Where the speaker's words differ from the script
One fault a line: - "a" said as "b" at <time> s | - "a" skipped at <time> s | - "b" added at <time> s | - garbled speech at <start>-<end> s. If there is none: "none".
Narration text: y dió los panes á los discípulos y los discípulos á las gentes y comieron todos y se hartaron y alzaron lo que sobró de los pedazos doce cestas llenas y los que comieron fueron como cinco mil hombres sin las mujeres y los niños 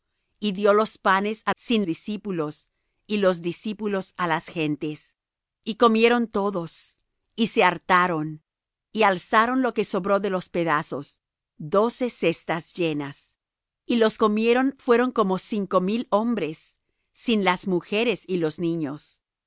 - "los" said as "sin" at 1.5 s
- "que" skipped at 14.2 s